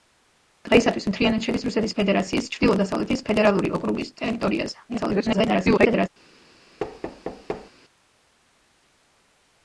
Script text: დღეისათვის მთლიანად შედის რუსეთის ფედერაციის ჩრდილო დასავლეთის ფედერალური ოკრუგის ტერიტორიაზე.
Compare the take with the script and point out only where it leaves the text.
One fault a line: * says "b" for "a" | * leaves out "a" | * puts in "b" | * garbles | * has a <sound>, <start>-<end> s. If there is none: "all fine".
* garbles
* has a thud, 6.8-7.7 s